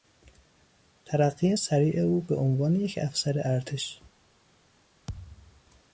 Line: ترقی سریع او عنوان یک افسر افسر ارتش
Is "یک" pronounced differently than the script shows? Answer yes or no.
no